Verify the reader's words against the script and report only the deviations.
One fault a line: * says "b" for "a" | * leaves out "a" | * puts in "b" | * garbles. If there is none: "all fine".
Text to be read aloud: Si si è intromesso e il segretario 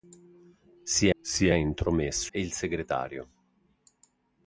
all fine